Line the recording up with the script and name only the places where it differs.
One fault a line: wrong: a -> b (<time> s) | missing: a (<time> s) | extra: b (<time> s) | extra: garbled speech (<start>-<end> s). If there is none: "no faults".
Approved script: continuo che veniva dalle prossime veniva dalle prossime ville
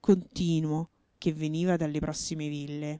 missing: veniva dalle prossime (2.5 s)